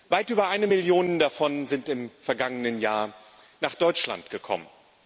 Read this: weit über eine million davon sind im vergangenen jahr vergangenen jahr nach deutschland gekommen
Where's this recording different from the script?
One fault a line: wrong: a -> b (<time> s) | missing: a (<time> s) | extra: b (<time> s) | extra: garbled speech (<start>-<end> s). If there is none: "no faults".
missing: vergangenen jahr (3.1 s)